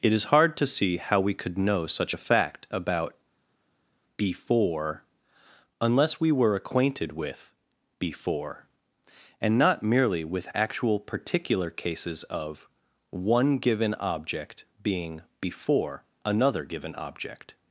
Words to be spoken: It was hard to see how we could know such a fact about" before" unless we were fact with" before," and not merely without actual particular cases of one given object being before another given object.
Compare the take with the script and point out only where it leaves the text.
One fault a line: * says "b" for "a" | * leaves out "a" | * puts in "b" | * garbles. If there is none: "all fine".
* says "is" for "was"
* says "acquainted" for "fact"
* says "with" for "without"